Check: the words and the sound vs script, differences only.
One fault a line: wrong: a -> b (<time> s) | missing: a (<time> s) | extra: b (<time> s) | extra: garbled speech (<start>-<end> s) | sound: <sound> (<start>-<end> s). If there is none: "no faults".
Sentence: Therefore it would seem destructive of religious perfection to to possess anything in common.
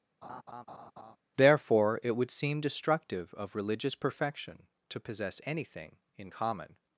sound: laugh (0.2-1.2 s)
missing: to (5.0 s)